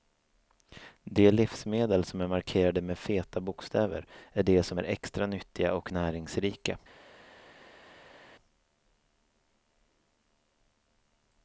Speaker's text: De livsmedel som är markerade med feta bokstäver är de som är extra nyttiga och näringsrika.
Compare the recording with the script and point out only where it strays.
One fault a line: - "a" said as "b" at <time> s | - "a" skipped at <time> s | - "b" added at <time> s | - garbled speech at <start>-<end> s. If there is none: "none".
none